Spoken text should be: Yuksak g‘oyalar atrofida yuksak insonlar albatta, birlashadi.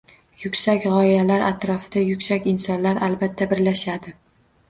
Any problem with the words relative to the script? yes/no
no